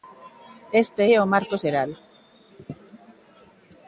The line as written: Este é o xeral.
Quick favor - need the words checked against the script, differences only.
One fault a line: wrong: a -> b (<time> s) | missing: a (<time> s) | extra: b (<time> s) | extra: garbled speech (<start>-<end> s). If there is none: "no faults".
extra: marco (1.3 s)